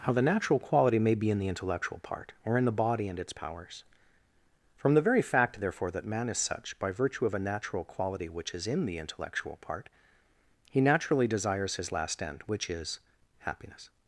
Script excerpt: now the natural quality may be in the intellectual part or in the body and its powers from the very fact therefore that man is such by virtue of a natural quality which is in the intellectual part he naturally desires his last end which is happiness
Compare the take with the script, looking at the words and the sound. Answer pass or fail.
fail